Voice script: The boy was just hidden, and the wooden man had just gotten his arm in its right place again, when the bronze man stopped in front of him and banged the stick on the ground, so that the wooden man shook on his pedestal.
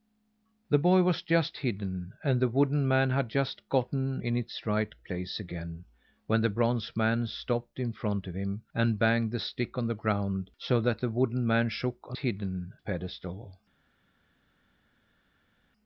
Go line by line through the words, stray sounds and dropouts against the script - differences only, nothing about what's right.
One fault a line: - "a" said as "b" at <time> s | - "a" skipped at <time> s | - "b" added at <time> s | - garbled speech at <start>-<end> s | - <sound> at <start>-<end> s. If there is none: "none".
- "his arm" skipped at 4.2 s
- "his" said as "hidden" at 12.2 s